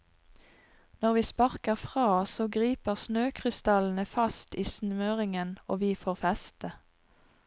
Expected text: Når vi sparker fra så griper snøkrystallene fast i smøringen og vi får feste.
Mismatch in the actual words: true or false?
false